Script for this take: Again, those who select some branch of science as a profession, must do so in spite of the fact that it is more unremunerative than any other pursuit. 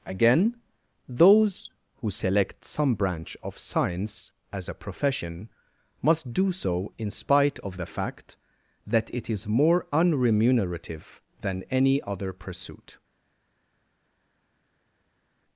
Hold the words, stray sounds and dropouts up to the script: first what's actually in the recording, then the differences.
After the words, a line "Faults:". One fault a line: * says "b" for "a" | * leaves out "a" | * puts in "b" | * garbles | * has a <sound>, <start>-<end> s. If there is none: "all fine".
Again, those who select some branch of science as a profession, must do so in spite of the fact that it is more unremunerative than any other pursuit.
Faults:
all fine